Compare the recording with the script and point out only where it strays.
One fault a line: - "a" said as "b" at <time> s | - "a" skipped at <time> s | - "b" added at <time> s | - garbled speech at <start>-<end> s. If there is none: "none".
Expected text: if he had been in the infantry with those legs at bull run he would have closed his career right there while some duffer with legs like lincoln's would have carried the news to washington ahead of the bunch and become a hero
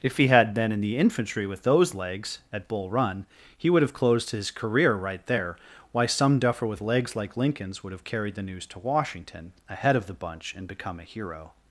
- "while" said as "why" at 5.9 s